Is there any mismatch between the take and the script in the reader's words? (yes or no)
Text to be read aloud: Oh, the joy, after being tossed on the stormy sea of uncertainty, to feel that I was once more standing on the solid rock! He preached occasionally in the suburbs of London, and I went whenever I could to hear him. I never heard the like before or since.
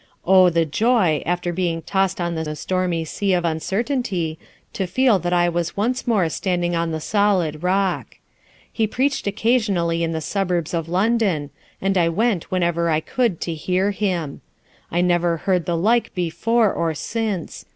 yes